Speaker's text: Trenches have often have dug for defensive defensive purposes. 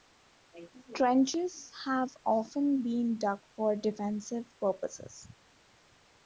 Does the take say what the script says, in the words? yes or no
no